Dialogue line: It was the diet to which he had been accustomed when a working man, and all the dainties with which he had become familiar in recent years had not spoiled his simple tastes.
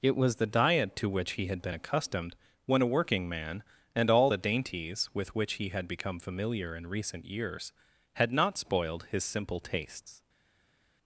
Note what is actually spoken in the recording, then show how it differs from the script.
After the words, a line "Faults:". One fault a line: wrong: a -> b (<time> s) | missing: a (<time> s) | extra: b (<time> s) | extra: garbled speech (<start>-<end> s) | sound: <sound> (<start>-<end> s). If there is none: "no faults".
It was the diet to which he had been accustomed when a working man, and all the dainties with which he had become familiar in recent years had not spoiled his simple tastes.
Faults:
no faults